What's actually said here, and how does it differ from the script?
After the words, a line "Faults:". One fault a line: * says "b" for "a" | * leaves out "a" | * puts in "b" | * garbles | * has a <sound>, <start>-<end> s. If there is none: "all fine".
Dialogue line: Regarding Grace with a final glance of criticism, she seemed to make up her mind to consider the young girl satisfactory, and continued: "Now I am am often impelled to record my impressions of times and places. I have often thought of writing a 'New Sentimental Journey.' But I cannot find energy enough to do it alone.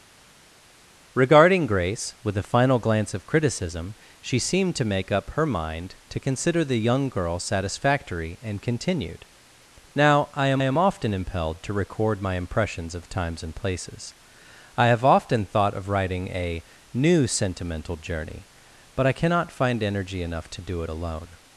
Regarding Grace with a final glance of criticism, she seemed to make up her mind to consider the young girl satisfactory, and continued: "Now I am am often impelled to record my impressions of times and places. I have often thought of writing a 'New Sentimental Journey.' But I cannot find energy enough to do it alone.
Faults:
all fine